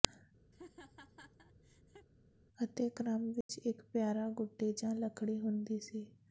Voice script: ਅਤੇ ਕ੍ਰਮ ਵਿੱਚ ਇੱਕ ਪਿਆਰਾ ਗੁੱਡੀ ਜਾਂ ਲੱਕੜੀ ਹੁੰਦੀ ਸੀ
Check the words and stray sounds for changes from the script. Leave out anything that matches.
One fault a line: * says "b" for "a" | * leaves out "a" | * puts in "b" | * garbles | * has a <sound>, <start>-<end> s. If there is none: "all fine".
* has a laugh, 0.5-2.1 s
* has a dropout, 3.4-3.5 s